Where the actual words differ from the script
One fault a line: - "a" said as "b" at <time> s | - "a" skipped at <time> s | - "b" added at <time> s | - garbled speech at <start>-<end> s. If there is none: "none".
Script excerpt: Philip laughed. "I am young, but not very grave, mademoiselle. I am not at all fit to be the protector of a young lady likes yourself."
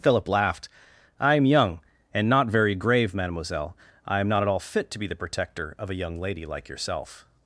- "but" said as "and" at 2.1 s
- "likes" said as "like" at 6.5 s